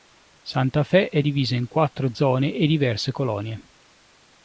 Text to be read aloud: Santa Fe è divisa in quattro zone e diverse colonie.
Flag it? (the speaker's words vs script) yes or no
no